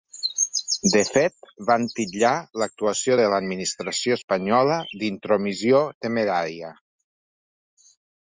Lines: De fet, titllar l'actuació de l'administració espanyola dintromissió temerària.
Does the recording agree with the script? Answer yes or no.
no